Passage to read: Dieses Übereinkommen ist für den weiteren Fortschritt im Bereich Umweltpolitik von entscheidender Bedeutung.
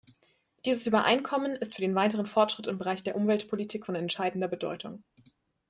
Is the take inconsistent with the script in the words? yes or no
yes